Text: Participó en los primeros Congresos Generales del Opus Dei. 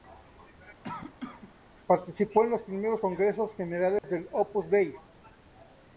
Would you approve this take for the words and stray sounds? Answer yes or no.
no